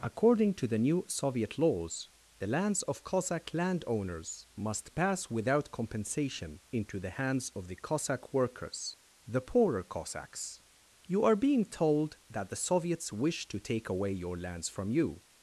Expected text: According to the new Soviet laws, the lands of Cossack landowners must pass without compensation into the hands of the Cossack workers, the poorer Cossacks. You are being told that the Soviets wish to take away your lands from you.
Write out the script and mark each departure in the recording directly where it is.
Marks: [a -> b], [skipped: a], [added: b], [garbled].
According to the new Soviet laws, the lands of Cossack landowners must pass without compensation into the hands of the Cossack workers, the poorer Cossacks. You are being told that the Soviets wish to take away your lands from you.